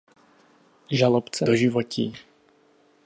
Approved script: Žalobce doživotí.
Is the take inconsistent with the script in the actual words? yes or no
no